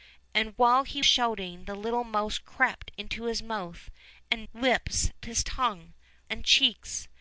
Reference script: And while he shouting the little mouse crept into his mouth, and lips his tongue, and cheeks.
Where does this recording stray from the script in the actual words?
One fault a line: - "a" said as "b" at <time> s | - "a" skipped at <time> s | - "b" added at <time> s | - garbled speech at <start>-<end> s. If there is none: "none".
none